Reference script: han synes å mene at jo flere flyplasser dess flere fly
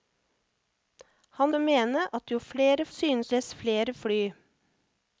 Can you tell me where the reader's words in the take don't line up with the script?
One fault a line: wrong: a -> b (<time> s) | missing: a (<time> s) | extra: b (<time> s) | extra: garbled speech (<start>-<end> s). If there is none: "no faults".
missing: synes (1.5 s)
wrong: flyplasser -> synes (2.9 s)